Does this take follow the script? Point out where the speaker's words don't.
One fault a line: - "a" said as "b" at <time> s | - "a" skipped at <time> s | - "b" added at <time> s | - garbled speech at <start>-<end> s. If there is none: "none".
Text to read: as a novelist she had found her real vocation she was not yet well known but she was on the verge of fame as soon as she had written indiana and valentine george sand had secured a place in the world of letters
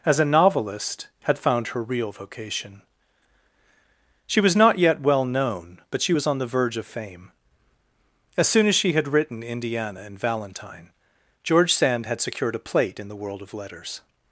- "she" skipped at 1.1 s
- "place" said as "plate" at 12.6 s